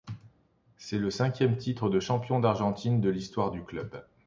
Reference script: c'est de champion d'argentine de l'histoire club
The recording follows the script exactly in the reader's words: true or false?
false